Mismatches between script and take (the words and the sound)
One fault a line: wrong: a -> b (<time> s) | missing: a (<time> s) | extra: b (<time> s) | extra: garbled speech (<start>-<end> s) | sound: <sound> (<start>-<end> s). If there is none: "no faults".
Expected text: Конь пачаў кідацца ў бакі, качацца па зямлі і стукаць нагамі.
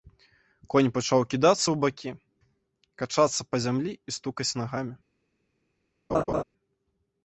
sound: laugh (6.1-6.4 s)